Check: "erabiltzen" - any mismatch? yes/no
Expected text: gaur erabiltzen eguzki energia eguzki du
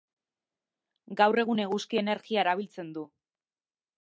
yes